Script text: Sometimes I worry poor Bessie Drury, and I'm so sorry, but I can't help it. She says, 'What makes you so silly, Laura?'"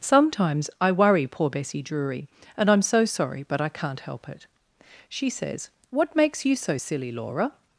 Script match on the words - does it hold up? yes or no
yes